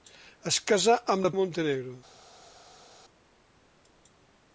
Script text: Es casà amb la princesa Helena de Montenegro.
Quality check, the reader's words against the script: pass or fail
fail